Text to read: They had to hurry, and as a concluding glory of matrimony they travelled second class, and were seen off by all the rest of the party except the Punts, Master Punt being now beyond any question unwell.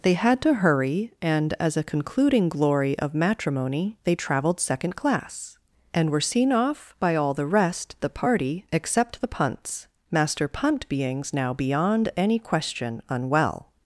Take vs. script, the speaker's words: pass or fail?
fail